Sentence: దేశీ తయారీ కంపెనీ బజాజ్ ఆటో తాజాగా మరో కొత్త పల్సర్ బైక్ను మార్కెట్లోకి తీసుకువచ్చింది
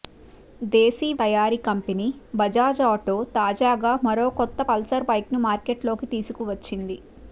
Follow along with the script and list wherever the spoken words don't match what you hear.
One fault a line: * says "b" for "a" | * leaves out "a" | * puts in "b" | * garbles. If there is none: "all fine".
all fine